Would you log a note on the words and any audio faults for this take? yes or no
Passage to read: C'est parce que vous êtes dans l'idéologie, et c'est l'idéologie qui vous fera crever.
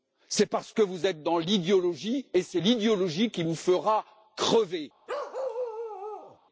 yes